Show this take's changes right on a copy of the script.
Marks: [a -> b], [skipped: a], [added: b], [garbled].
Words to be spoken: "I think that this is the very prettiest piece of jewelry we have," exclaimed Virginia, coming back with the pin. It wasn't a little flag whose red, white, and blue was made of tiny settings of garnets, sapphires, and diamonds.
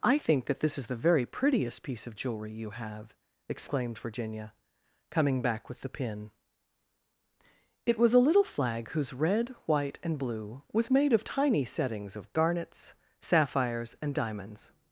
"I think that this is the very prettiest piece of jewelry [we -> you] have," exclaimed Virginia, coming back with the pin. It [wasn't -> was] a little flag whose red, white, and blue was made of tiny settings of garnets, sapphires, and diamonds.